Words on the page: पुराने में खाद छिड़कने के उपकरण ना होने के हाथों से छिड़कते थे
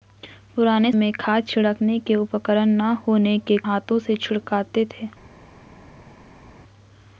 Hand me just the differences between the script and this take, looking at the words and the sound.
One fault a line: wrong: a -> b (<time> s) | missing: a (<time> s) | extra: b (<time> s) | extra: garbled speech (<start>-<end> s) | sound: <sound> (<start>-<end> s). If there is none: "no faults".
no faults